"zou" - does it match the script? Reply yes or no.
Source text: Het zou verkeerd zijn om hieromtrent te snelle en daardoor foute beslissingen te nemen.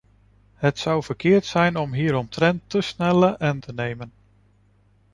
yes